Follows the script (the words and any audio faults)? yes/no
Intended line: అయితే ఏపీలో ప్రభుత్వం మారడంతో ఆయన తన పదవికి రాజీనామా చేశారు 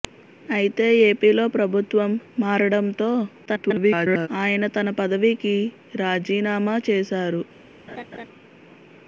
no